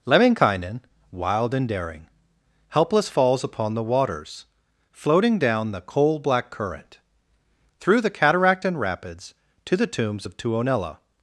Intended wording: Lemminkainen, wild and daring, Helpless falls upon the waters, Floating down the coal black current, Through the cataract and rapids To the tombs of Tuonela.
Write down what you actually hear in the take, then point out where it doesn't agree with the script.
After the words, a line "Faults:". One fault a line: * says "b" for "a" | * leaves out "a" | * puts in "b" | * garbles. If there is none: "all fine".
Lemminkainen, wild and daring, Helpless falls upon the waters, Floating down the coal black current, Through the cataract and rapids To the tombs of Tuonela.
Faults:
all fine